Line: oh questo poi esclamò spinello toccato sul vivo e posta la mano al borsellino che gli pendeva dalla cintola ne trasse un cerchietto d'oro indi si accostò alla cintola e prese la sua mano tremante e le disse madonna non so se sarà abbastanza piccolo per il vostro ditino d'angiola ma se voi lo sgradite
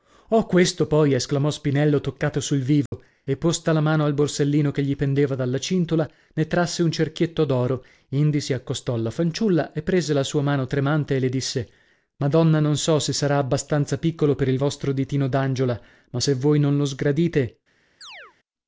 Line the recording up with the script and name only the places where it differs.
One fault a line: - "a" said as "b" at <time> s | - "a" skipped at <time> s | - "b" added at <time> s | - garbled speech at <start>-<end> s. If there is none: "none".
- "cintola" said as "fanciulla" at 9.1 s
- "non" added at 16.6 s